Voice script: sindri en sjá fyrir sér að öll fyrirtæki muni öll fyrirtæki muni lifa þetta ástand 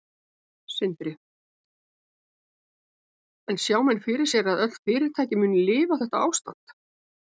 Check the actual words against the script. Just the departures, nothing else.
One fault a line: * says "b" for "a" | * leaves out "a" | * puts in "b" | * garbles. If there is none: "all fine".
* puts in "menn"
* leaves out "öll fyrirtæki muni"